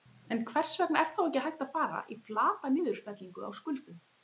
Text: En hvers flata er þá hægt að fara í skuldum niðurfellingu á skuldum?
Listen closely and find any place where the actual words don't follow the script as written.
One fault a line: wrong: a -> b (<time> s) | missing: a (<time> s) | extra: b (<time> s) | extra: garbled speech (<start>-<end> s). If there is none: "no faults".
wrong: flata -> vegna (0.8 s)
extra: ekki (1.2 s)
wrong: skuldum -> flata (2.3 s)